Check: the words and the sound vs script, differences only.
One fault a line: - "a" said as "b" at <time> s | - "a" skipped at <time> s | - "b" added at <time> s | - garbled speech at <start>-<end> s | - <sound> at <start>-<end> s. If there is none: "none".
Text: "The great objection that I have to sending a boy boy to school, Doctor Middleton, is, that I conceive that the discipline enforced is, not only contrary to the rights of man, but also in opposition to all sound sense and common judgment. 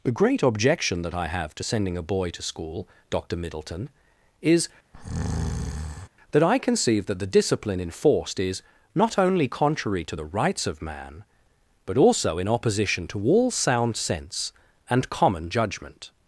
- "boy" skipped at 2.3 s
- breath at 4.9-6.1 s